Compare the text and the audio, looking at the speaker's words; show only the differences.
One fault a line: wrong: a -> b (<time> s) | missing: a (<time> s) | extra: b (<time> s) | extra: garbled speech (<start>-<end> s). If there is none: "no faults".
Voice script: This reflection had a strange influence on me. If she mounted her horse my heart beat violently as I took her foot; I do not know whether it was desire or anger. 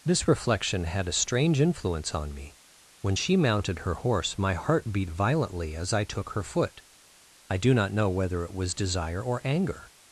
wrong: If -> When (3.0 s)